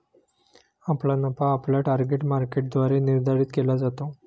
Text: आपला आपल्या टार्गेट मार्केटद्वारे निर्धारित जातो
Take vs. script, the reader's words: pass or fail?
fail